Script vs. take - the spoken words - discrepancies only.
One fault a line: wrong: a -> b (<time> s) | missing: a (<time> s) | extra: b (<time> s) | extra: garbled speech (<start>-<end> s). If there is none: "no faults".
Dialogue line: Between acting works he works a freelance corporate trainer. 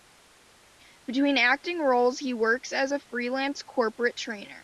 wrong: works -> roles (1.8 s)
extra: as (2.7 s)